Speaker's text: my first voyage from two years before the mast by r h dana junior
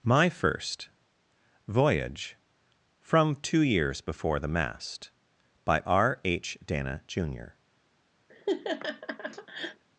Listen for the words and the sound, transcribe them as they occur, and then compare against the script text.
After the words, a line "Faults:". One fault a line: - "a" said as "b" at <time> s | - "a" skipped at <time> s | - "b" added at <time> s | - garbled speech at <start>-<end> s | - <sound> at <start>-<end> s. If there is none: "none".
my first voyage from two years before the mast by r h dana junior
Faults:
- laugh at 8.3-9.8 s